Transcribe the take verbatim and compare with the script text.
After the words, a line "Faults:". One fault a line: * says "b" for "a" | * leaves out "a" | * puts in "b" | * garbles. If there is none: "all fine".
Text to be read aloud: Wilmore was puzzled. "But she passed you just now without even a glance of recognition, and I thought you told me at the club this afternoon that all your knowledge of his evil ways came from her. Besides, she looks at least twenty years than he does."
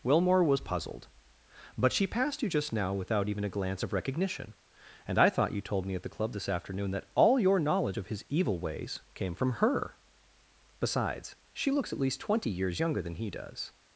Wilmore was puzzled. "But she passed you just now without even a glance of recognition, and I thought you told me at the club this afternoon that all your knowledge of his evil ways came from her. Besides, she looks at least twenty years younger than he does."
Faults:
* puts in "younger"